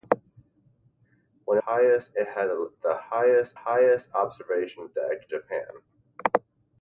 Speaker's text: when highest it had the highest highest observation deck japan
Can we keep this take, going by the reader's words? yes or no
yes